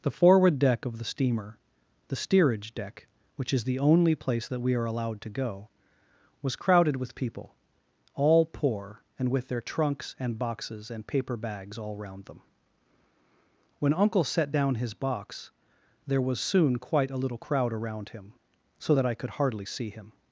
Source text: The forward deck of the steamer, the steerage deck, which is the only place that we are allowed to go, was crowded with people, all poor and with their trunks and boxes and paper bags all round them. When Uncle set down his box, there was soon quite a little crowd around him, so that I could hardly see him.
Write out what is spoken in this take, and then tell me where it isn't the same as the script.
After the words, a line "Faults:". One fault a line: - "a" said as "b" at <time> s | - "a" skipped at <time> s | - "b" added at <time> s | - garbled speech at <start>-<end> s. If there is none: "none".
The forward deck of the steamer, the steerage deck, which is the only place that we are allowed to go, was crowded with people, all poor and with their trunks and boxes and paper bags all round them. When Uncle set down his box, there was soon quite a little crowd around him, so that I could hardly see him.
Faults:
none